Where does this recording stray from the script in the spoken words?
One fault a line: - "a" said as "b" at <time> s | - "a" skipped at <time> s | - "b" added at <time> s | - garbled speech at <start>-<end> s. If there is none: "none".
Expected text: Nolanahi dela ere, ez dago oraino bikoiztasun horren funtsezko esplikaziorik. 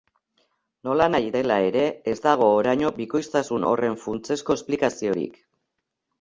none